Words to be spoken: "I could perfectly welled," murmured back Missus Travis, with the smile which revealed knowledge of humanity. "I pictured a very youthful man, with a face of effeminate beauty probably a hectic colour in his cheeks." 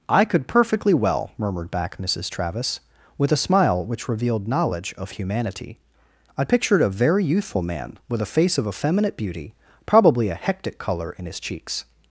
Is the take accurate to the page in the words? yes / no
no